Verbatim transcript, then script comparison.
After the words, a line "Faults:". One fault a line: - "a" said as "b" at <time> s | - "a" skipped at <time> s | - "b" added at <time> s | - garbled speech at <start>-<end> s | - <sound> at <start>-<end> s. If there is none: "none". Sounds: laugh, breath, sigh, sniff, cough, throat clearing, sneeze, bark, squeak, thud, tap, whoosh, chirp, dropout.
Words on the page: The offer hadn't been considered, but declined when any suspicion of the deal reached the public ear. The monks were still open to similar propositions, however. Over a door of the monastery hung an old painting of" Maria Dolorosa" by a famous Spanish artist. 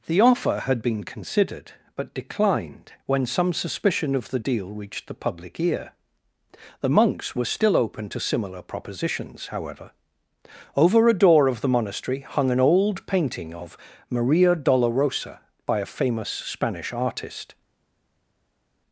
The offer had been considered, but declined when some suspicion of the deal reached the public ear. The monks were still open to similar propositions, however. Over a door of the monastery hung an old painting of" Maria Dolorosa" by a famous Spanish artist.
Faults:
- "hadn't" said as "had" at 0.7 s
- "any" said as "some" at 3.3 s